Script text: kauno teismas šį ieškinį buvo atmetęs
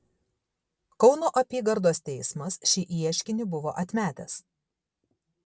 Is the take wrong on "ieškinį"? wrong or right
right